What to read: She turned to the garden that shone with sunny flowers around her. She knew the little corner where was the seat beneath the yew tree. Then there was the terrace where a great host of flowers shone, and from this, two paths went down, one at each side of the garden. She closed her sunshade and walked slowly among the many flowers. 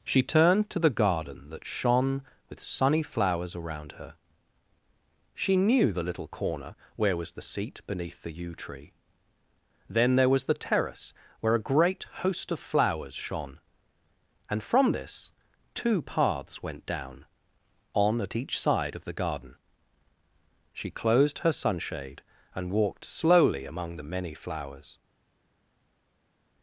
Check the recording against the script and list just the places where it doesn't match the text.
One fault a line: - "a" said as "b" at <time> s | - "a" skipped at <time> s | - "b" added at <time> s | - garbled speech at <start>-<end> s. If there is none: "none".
- "one" said as "on" at 17.9 s